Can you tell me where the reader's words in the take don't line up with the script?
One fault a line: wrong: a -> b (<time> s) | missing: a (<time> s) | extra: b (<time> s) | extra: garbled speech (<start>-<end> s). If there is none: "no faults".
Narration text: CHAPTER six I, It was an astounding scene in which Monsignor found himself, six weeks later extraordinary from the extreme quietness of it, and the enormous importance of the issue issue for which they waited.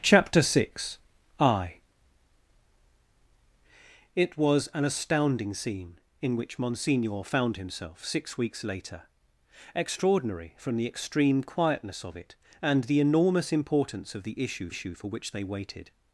no faults